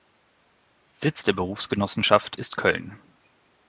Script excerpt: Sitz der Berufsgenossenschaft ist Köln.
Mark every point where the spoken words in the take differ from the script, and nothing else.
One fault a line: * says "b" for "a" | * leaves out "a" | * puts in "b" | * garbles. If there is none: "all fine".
all fine